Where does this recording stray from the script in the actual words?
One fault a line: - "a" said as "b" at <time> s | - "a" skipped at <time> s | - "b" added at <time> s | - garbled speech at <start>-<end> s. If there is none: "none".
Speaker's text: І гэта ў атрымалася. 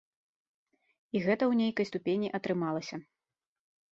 - "нейкай ступені" added at 1.6 s